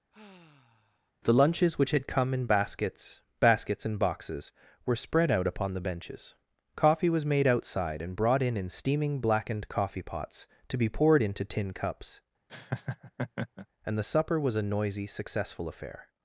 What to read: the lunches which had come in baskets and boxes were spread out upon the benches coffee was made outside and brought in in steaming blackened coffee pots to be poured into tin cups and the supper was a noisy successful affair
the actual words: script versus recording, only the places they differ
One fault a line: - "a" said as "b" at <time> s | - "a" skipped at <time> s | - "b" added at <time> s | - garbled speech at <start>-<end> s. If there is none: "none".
- "baskets" added at 3.4 s